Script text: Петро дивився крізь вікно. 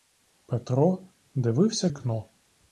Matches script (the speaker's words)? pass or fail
fail